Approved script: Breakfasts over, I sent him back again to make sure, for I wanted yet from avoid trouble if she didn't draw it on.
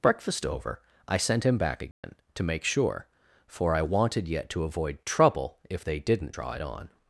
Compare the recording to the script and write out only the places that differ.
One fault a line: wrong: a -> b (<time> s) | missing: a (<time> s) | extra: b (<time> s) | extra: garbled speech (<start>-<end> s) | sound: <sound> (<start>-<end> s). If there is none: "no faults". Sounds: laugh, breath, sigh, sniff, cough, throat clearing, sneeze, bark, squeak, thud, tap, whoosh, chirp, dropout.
wrong: Breakfasts -> Breakfast (0.0 s)
sound: dropout (1.9-2.0 s)
wrong: from -> to (4.5 s)
wrong: she -> they (5.8 s)